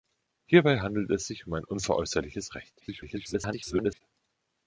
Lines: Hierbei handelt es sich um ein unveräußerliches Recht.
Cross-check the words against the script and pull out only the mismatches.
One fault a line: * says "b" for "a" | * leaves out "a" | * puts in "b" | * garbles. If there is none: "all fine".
* garbles